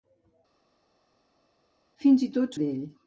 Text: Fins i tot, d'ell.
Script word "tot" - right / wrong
right